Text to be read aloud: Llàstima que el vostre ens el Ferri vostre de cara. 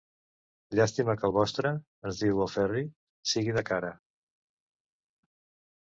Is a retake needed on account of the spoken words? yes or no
yes